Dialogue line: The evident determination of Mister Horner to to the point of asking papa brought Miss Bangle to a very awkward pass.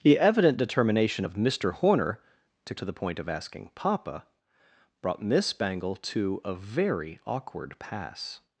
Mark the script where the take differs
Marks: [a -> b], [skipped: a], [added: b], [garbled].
The evident determination of Mister Horner to to the point of asking papa brought Miss Bangle to a very awkward pass.